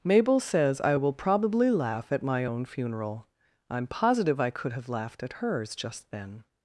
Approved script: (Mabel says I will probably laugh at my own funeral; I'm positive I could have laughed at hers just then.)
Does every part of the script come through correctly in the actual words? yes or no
yes